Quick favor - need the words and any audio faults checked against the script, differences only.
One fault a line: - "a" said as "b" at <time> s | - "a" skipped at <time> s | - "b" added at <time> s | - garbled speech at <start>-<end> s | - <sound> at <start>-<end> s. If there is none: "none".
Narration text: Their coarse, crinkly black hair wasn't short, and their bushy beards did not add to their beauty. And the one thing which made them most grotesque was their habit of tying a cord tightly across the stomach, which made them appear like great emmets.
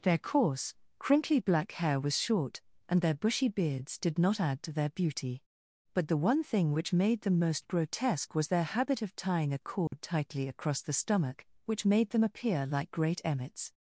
- "wasn't" said as "was" at 2.0 s
- "And" said as "But" at 5.9 s
- dropout at 9.9-9.9 s